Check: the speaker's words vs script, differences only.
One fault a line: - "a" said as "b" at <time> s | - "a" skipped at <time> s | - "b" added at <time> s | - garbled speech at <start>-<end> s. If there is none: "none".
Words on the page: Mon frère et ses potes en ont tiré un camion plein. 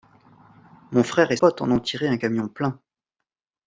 - "ses" skipped at 1.4 s